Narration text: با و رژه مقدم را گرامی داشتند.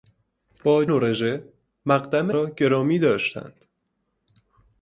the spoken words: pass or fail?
pass